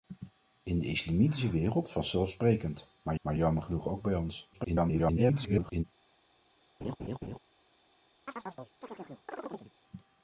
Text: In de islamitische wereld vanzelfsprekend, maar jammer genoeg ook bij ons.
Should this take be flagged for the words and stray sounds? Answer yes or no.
yes